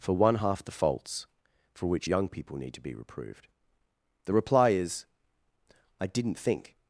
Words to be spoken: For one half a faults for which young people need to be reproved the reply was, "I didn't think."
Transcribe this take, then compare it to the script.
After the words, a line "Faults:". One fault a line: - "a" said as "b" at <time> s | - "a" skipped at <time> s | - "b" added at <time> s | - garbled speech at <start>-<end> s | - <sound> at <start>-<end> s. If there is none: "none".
For one half the faults for which young people need to be reproved the reply is, "I didn't think."
Faults:
- "a" said as "the" at 0.6 s
- "was" said as "is" at 4.7 s